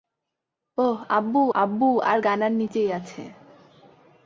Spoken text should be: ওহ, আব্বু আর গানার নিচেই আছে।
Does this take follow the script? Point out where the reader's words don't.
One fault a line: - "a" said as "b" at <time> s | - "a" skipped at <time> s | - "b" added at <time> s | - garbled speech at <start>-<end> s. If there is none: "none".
- "আব্বু" added at 1.5 s